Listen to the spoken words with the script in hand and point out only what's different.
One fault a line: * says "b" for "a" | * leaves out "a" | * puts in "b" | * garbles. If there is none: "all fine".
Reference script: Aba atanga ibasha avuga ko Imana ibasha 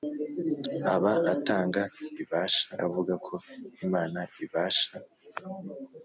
all fine